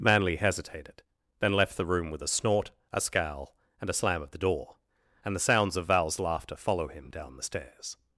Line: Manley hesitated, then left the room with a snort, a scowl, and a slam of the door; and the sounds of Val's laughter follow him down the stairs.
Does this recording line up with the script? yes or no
yes